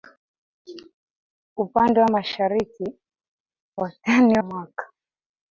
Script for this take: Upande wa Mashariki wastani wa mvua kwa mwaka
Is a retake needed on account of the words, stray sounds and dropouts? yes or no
yes